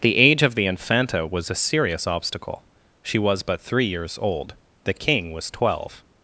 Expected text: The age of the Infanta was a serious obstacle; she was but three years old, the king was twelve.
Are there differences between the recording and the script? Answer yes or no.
no